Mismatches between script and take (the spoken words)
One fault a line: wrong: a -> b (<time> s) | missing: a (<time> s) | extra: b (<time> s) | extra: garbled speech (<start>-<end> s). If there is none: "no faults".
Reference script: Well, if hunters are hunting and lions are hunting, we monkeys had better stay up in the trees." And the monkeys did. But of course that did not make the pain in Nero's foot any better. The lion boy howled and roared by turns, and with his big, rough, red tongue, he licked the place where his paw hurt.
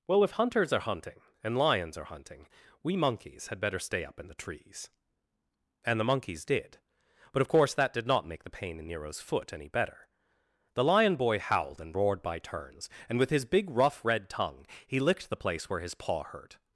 no faults